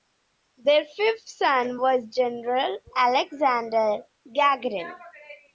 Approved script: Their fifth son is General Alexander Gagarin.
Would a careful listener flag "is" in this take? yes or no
yes